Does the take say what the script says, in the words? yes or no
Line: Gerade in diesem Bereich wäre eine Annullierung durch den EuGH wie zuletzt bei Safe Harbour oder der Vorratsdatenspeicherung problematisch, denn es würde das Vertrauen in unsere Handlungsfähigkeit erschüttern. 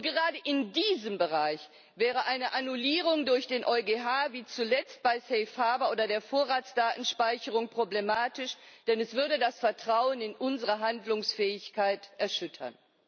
yes